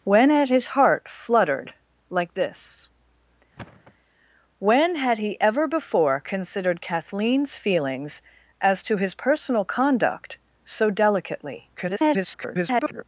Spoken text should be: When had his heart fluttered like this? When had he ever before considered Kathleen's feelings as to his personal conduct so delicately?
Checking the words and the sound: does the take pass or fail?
fail